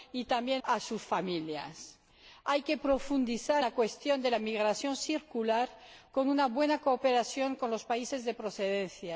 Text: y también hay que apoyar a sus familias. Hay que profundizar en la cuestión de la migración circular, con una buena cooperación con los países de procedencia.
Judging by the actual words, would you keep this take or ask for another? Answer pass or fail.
fail